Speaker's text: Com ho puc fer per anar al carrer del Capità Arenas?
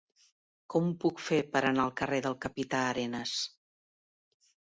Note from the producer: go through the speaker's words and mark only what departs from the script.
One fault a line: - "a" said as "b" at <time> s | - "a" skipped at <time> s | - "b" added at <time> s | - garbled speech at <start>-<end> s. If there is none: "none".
none